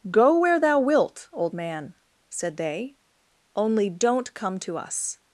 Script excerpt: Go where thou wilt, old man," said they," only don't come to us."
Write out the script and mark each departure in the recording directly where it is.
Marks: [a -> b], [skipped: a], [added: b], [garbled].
Go where thou wilt, old man," said they," only don't come to us."